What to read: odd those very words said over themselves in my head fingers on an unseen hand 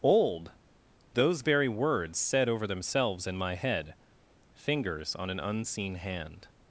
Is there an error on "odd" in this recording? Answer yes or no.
yes